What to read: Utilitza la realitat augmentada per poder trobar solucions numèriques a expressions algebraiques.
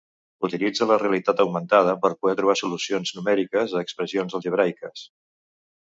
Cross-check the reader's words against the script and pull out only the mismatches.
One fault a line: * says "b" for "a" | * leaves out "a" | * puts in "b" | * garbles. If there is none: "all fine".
all fine